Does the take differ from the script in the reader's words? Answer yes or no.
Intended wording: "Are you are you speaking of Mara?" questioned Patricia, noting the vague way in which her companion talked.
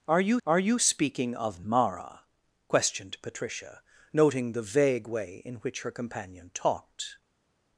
no